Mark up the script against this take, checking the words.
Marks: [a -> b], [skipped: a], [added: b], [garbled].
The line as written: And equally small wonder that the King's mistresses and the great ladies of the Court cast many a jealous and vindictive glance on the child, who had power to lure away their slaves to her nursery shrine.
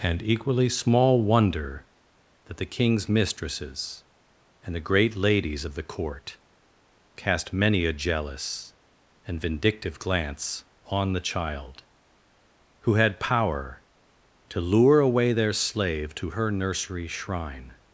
And equally small wonder that the King's mistresses and the great ladies of the Court cast many a jealous and vindictive glance on the child, who had power to lure away their [slaves -> slave] to her nursery shrine.